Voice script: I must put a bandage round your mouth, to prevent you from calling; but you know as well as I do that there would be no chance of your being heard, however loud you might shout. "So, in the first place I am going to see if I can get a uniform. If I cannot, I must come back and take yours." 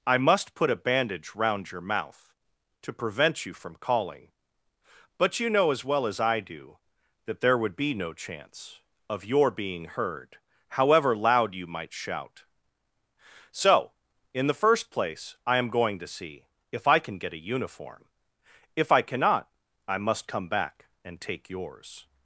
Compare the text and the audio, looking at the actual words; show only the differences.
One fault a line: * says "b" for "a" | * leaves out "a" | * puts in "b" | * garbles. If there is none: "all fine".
all fine